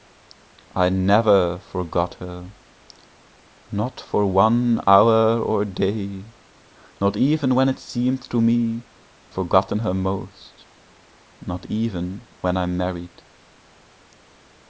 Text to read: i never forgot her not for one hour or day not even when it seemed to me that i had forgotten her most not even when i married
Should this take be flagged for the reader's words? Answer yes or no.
yes